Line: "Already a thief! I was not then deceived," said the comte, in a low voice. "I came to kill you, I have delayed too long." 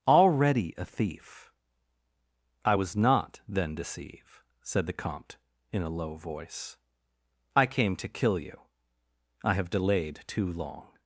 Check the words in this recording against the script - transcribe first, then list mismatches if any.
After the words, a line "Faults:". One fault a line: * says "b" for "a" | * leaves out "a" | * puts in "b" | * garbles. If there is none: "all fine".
"Already a thief! I was not then deceive," said the comte, in a low voice. "I came to kill you, I have delayed too long."
Faults:
* says "deceive" for "deceived"